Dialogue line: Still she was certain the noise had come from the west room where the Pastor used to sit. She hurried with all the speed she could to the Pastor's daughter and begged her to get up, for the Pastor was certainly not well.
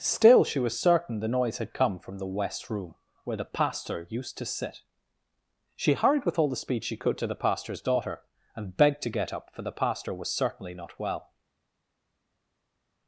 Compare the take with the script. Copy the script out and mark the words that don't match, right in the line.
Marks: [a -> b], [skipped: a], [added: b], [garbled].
Still she was certain the noise had come from the west room where the Pastor used to sit. She hurried with all the speed she could to the Pastor's daughter and begged [skipped: her] to get up, for the Pastor was certainly not well.